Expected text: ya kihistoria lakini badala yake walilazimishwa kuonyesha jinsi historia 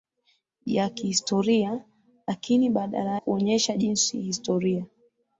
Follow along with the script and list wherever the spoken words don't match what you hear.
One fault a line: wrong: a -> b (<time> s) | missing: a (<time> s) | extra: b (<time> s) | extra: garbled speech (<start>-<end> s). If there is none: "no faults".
missing: yake walilazimishwa (3.2 s)